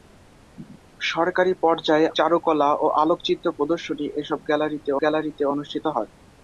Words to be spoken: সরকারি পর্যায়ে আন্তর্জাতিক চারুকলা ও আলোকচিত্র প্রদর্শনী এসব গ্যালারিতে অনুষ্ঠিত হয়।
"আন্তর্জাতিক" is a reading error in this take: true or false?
true